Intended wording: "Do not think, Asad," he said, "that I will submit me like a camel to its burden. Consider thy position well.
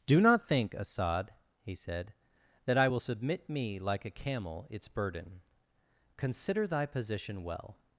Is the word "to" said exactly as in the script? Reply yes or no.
no